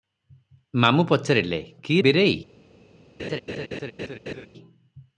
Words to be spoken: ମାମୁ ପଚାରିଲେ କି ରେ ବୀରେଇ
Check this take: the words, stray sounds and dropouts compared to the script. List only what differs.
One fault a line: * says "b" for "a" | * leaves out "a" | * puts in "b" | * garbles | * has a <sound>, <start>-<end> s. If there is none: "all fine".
* leaves out "ରେ"
* has a laugh, 3.2-4.5 s